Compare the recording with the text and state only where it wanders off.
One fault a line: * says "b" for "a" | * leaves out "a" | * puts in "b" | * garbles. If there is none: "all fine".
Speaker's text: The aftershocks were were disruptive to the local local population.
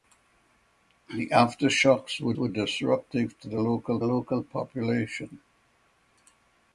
all fine